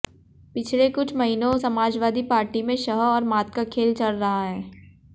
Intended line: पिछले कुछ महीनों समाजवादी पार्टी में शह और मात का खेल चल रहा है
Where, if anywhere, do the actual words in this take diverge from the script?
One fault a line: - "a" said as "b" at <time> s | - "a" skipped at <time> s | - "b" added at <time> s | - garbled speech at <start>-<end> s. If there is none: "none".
none